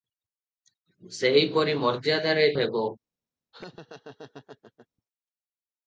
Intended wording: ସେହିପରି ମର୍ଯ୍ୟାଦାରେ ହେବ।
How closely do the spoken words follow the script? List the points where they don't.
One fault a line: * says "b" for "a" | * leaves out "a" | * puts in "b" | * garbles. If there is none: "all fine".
all fine